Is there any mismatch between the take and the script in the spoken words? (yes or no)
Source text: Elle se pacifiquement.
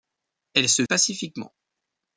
no